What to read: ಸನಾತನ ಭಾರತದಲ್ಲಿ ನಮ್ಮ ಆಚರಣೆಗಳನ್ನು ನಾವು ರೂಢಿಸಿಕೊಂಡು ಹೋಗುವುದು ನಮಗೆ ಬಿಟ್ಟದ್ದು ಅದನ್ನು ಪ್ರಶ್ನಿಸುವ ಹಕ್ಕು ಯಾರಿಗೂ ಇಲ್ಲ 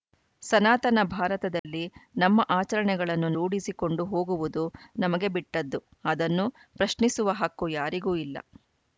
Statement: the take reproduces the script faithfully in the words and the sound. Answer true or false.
false